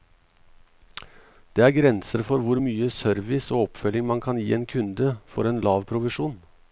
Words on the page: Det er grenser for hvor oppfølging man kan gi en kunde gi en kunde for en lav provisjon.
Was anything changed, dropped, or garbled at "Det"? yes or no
no